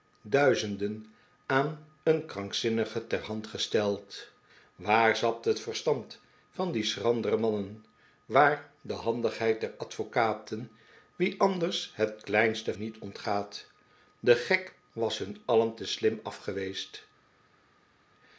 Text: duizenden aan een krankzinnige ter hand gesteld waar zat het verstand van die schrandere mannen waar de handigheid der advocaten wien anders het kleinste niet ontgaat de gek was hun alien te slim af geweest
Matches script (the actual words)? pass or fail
pass